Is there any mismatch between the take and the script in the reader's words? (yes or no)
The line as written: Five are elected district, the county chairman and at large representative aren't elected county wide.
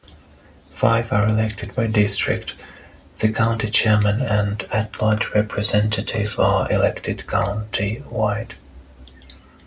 yes